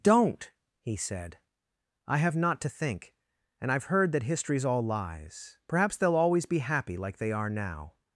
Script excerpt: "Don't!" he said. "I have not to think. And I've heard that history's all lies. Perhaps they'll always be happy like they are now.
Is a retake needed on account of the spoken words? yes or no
no